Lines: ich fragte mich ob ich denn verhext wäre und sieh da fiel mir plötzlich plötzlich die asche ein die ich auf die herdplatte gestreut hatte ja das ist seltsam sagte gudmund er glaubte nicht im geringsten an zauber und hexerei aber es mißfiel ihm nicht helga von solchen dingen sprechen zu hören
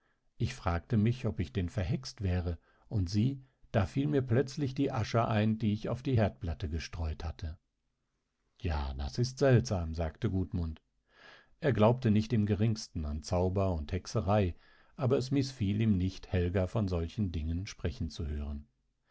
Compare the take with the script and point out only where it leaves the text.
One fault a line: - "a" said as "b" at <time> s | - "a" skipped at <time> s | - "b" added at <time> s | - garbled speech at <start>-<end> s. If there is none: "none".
- "plötzlich" skipped at 4.7 s